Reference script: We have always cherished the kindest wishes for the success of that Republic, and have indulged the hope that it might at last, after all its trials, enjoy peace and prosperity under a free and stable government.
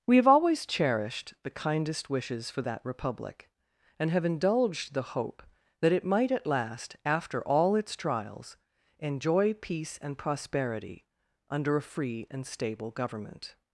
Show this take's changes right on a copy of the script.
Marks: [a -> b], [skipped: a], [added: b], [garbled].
We have always cherished the kindest wishes for [skipped: the success of] that Republic, and have indulged the hope that it might at last, after all its trials, enjoy peace and prosperity under a free and stable government.